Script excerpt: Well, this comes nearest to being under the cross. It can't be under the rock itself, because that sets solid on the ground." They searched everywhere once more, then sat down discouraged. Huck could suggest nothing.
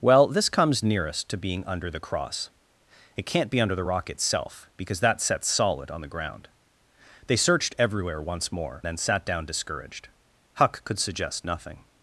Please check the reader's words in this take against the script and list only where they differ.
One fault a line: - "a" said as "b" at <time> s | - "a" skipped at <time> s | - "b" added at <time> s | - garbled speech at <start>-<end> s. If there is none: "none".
none